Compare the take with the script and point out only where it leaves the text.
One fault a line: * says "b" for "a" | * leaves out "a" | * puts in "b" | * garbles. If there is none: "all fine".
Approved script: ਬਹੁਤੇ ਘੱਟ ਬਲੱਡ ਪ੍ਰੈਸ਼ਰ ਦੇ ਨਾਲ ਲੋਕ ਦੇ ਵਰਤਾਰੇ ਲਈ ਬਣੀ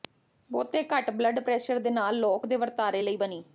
all fine